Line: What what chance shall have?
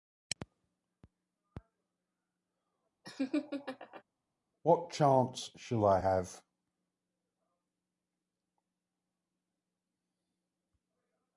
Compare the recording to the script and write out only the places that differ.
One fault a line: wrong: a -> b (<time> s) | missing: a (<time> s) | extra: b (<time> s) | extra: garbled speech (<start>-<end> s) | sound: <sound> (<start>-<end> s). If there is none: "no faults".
sound: laugh (3.0-4.0 s)
missing: what (4.9 s)
extra: I (5.8 s)